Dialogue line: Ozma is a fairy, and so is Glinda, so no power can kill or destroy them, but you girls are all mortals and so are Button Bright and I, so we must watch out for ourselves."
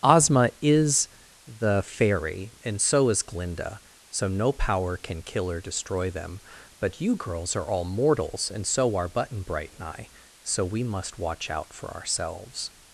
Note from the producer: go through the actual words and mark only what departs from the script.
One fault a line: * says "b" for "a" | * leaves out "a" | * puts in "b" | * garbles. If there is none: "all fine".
* says "the" for "a"